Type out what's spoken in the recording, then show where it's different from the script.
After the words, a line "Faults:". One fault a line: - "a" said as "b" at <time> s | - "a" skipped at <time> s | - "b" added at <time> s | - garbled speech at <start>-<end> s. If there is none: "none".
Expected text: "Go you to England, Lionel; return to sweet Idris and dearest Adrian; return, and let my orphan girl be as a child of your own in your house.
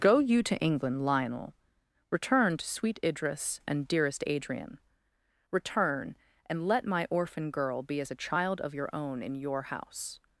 "Go you to England, Lionel; return to sweet Idris and dearest Adrian; return, and let my orphan girl be as a child of your own in your house.
Faults:
none